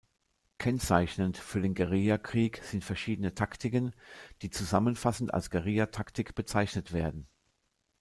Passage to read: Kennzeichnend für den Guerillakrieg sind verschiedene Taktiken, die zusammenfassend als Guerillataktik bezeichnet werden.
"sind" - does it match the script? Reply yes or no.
yes